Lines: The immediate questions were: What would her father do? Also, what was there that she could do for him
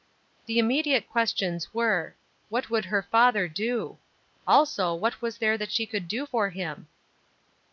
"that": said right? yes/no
yes